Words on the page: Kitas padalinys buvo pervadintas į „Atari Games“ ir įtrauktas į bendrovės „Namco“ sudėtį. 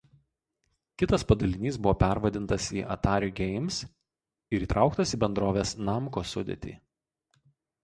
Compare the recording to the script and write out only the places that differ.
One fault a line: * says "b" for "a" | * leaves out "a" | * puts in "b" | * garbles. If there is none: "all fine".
all fine